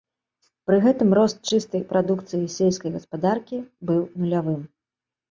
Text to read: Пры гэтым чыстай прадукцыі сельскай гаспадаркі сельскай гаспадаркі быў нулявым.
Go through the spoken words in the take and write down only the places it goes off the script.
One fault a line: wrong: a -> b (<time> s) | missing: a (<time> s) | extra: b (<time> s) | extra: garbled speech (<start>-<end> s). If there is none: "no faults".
extra: рост (1.2 s)
missing: сельскай гаспадаркі (3.6 s)